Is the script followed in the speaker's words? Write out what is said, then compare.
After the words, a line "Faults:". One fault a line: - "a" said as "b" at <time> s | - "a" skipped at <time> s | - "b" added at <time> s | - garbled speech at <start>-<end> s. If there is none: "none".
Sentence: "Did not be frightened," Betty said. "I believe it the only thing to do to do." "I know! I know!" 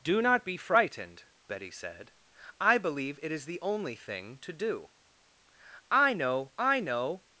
"Do not be frightened," Betty said. "I believe it is the only thing to do." "I know! I know!"
Faults:
- "Did" said as "Do" at 0.0 s
- "is" added at 3.3 s
- "to do" skipped at 4.9 s